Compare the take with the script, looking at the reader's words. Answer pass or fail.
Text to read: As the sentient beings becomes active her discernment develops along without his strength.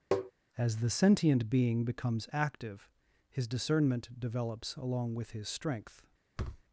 fail